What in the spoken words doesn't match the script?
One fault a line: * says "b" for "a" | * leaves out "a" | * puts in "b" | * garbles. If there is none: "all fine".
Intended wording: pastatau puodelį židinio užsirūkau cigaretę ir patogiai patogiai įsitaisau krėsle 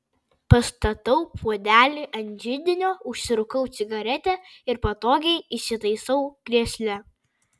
* puts in "ant"
* leaves out "patogiai"